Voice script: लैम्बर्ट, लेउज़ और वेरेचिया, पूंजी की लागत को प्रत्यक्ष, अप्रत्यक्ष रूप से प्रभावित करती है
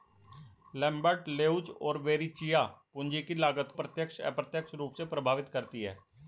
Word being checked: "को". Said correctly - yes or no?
no